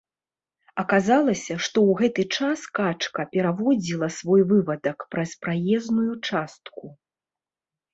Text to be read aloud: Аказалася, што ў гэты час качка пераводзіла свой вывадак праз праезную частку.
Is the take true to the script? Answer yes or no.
yes